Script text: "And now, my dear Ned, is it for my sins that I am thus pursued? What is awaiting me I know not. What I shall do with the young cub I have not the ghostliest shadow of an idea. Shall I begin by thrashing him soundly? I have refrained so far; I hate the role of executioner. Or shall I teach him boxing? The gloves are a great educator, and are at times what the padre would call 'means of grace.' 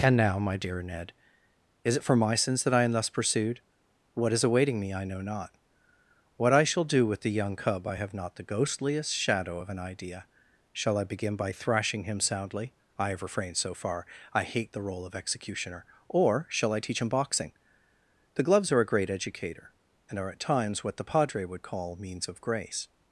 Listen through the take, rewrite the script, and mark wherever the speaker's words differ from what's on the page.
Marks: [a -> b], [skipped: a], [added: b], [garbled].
"And now, my dear Ned, is it for my sins that I am thus pursued? What is awaiting me I know not. What I shall do with the young cub I have not the ghostliest shadow of an idea. Shall I begin by thrashing him soundly? I have refrained so far; I hate the role of executioner. Or shall I teach him boxing? The gloves are a great educator, and are at times what the padre would call 'means of grace.'